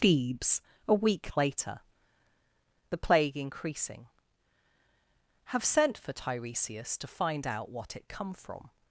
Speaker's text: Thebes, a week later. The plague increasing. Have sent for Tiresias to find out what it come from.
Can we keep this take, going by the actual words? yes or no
yes